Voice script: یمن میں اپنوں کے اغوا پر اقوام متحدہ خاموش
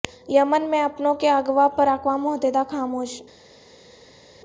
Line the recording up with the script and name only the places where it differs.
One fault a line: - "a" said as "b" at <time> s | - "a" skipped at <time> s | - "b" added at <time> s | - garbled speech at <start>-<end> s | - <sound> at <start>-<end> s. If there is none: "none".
none